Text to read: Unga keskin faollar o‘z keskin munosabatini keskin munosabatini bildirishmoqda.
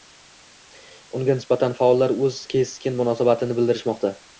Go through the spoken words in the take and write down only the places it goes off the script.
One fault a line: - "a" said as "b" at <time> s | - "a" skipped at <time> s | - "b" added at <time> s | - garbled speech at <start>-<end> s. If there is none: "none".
- "keskin" said as "nisbatan" at 1.4 s
- "keskin munosabatini" skipped at 3.6 s